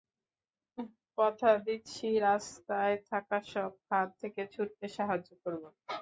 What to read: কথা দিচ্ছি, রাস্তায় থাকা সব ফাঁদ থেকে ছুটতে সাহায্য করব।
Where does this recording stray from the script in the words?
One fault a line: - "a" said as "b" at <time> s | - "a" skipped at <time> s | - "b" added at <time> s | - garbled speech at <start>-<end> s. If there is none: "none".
none